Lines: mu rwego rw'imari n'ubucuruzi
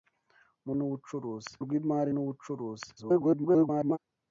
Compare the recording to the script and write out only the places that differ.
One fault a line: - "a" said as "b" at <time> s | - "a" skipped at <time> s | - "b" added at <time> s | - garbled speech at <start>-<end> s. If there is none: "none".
- "rwego" said as "n'ubucuruzi" at 0.8 s
- garbled speech at 3.0-4.0 s